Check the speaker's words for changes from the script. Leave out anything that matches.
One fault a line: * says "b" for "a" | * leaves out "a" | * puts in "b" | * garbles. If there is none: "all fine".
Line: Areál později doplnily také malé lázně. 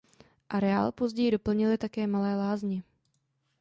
all fine